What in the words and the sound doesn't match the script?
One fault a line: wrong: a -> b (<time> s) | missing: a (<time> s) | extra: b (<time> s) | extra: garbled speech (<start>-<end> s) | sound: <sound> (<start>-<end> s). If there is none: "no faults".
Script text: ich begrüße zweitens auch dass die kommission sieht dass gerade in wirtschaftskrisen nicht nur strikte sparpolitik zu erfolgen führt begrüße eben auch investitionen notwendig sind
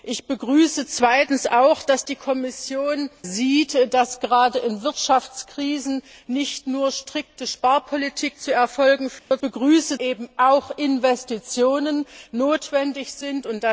sound: dropout (9.2-9.3 s)